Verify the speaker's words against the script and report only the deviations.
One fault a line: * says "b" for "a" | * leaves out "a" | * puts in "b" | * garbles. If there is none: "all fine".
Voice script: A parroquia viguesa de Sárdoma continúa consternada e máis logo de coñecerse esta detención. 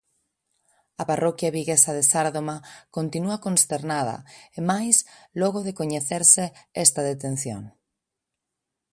all fine